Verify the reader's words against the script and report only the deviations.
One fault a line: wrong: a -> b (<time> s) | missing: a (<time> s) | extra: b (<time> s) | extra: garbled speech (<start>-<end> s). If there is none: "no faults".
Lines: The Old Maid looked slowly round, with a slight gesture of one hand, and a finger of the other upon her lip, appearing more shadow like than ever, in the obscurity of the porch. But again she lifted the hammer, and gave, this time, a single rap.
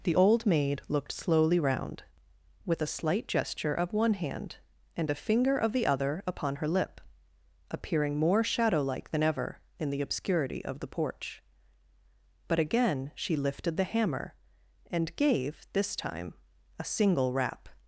no faults